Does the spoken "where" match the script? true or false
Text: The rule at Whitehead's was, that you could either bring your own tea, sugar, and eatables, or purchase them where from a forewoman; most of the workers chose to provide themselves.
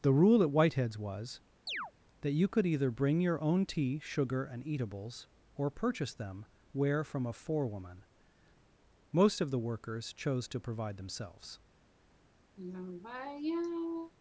true